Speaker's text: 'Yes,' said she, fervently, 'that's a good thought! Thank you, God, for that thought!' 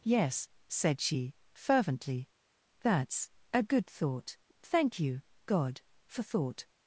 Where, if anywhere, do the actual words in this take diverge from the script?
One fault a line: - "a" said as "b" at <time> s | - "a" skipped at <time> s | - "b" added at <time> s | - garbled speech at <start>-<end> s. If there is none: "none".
- "that" skipped at 6.2 s